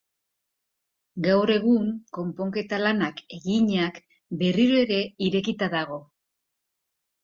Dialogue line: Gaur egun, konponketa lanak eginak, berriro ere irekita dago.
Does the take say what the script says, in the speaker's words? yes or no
yes